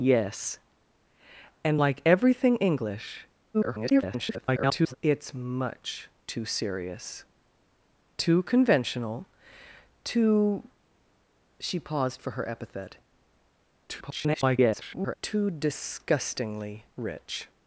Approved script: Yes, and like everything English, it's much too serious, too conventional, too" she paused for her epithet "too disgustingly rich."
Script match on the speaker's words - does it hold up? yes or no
no